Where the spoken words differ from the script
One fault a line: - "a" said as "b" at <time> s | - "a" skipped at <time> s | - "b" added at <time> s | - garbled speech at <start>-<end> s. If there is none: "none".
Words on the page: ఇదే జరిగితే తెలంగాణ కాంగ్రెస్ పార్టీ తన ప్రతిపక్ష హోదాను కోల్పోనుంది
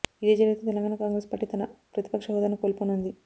none